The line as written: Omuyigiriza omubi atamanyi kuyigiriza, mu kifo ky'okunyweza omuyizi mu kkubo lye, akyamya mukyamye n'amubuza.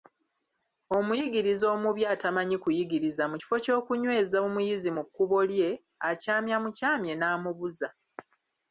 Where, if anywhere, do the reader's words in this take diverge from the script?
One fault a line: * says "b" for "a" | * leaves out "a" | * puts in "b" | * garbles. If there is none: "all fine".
all fine